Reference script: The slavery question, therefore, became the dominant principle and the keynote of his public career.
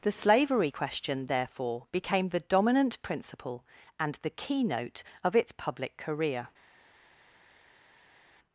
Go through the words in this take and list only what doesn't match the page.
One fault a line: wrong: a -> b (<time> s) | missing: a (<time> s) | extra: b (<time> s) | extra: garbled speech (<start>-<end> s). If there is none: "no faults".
wrong: his -> its (5.3 s)